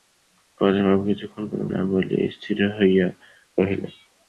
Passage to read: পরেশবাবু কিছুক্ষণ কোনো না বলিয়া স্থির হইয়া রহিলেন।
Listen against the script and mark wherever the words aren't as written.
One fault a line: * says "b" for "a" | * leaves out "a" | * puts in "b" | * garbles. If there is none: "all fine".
all fine